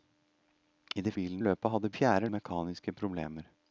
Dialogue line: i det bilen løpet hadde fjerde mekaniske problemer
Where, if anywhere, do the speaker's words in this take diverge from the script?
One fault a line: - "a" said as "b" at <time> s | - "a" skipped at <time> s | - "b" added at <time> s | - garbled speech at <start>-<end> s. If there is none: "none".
none